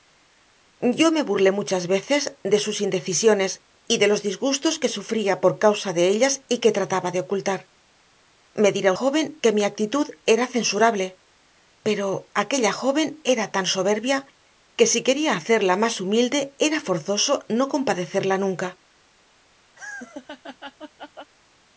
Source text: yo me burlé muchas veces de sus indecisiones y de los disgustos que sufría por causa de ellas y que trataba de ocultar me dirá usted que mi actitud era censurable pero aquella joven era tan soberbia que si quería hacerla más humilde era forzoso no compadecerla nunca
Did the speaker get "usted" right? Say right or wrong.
wrong